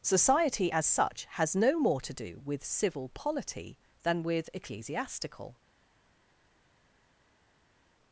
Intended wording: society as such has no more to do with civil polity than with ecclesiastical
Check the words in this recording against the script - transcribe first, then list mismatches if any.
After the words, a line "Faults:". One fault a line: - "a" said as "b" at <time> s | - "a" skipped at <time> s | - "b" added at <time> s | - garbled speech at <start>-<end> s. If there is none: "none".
society as such has no more to do with civil polity than with ecclesiastical
Faults:
none